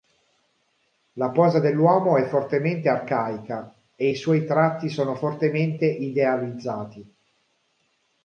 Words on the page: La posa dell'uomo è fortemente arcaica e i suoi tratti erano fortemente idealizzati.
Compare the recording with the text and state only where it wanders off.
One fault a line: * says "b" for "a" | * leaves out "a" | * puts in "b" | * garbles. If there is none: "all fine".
* says "sono" for "erano"